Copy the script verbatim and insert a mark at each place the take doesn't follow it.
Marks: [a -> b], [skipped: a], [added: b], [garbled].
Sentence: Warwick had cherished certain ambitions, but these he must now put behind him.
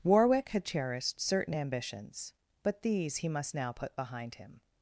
Warwick had cherished certain ambitions, but these he must now put behind him.